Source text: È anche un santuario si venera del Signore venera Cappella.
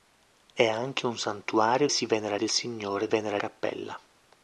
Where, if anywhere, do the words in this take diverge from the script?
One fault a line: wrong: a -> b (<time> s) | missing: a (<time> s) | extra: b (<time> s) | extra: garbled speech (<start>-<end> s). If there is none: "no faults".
no faults